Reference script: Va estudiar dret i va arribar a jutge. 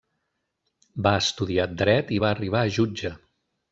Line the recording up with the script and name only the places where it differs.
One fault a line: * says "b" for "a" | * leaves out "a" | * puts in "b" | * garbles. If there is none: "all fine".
all fine